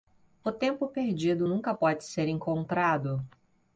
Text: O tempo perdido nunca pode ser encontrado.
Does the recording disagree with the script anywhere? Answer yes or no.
no